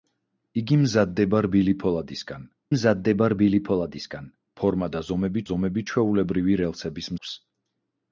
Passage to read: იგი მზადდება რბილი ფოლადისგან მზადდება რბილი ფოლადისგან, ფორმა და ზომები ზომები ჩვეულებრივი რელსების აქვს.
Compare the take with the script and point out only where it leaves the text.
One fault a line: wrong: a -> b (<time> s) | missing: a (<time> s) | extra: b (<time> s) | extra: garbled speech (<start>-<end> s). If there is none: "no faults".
no faults